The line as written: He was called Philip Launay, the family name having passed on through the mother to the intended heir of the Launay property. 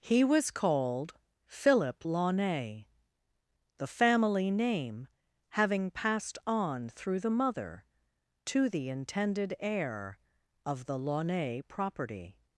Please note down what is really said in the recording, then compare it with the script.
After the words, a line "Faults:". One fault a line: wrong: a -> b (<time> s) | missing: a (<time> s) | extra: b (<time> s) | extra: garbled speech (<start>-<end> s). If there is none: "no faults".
He was called Philip Launay, the family name having passed on through the mother to the intended heir of the Launay property.
Faults:
no faults